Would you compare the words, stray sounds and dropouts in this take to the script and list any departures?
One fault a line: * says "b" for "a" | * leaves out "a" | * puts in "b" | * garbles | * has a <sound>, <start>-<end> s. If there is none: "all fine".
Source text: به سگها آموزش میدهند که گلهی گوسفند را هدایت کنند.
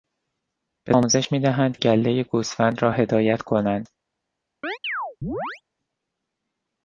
* leaves out "سگها"
* leaves out "که"
* has a chirp, 4.6-5.6 s